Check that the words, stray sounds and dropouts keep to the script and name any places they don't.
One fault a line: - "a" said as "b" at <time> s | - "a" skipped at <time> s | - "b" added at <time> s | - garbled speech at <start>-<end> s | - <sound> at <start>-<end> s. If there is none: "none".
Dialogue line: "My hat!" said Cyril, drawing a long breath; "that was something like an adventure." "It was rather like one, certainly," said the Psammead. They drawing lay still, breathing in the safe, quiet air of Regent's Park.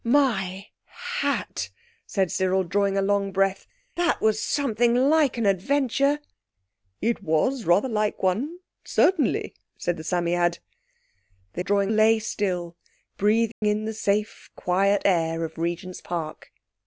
- dropout at 13.5-13.6 s